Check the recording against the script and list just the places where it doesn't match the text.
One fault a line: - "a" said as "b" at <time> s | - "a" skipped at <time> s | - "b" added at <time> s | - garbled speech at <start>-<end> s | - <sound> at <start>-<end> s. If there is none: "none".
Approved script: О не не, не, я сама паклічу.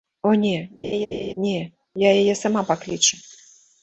- laugh at 0.8-1.3 s
- "не я" said as "я яе" at 2.0 s